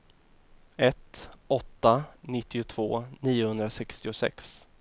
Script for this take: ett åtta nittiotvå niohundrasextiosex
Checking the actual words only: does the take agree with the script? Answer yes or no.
yes